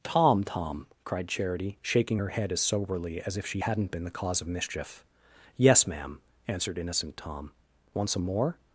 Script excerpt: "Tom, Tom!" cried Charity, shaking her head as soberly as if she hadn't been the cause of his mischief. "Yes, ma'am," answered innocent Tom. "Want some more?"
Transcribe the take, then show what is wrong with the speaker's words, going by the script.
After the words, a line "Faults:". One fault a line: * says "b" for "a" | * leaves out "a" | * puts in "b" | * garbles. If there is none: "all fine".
"Tom, Tom!" cried Charity, shaking her head as soberly as if she hadn't been the cause of mischief. "Yes, ma'am," answered innocent Tom. "Want some more?"
Faults:
* leaves out "his"